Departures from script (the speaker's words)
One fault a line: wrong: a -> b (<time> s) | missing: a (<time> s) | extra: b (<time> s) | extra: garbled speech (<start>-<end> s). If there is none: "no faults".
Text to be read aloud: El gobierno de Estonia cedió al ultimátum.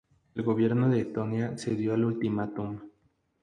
no faults